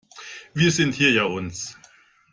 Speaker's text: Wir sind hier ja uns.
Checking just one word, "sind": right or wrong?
right